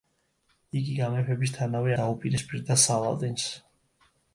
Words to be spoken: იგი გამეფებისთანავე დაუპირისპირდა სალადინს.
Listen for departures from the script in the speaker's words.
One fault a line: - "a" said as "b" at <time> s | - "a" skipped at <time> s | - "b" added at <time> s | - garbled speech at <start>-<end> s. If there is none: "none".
none